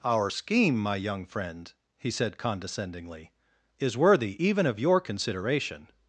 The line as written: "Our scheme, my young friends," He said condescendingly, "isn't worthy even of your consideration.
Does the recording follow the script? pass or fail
fail